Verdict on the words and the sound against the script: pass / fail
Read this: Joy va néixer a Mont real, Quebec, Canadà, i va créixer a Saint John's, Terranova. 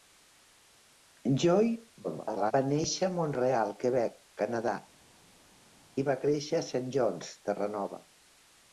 fail